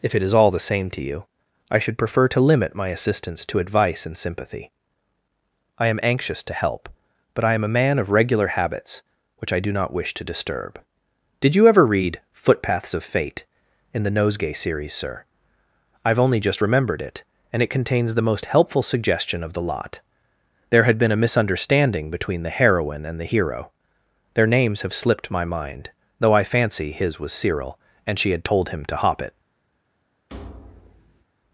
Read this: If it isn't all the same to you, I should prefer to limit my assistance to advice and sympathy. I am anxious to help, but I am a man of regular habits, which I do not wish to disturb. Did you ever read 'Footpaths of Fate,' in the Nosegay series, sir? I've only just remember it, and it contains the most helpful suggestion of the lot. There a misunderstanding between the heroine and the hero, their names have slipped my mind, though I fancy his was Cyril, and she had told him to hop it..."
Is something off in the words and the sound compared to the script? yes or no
yes